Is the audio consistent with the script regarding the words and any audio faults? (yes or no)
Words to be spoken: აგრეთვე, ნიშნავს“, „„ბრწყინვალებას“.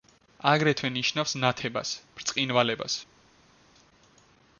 no